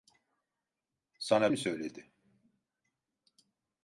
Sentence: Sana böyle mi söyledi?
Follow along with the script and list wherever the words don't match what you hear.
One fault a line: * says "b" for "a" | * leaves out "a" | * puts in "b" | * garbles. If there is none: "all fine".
* leaves out "böyle"